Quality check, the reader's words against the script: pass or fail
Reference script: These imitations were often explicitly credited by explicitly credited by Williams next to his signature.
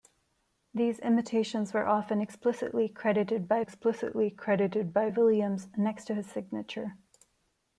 pass